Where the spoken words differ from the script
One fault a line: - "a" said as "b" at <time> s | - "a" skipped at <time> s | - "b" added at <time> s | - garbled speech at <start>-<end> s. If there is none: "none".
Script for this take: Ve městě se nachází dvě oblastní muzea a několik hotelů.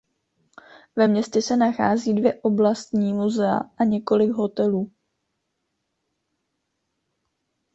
none